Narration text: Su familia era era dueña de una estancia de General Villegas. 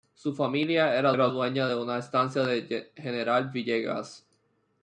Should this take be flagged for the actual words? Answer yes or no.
no